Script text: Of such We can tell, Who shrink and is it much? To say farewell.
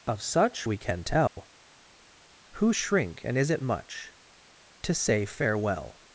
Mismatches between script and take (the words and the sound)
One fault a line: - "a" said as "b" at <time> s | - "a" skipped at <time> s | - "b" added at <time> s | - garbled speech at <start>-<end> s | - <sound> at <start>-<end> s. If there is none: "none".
- dropout at 1.3-1.4 s